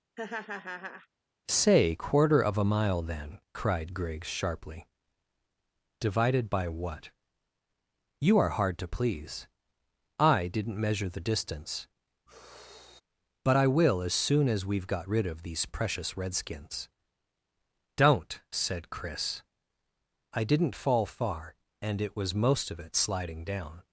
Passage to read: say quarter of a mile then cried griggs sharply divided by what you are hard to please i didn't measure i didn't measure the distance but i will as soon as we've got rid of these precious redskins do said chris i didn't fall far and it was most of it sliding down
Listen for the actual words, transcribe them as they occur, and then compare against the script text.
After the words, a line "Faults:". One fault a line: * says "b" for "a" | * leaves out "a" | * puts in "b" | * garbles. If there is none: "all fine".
say quarter of a mile then cried griggs sharply divided by what you are hard to please i didn't measure the distance but i will as soon as we've got rid of these precious redskins don't said chris i didn't fall far and it was most of it sliding down
Faults:
* leaves out "i didn't measure"
* says "don't" for "do"